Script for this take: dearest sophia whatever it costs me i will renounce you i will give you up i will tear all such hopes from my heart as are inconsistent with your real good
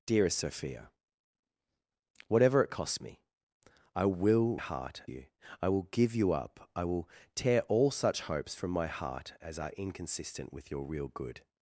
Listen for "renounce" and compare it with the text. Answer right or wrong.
wrong